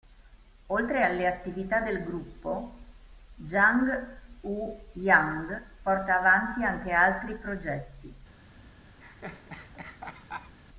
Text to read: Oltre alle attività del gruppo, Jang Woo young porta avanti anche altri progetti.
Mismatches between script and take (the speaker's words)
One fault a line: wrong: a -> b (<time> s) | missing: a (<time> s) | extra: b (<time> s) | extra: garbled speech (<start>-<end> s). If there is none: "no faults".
no faults